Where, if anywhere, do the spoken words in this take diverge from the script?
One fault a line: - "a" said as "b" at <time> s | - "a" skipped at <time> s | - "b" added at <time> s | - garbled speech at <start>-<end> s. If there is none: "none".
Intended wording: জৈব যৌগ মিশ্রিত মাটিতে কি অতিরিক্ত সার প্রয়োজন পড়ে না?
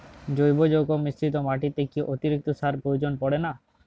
none